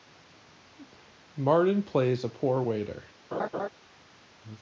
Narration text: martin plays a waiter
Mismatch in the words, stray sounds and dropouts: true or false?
true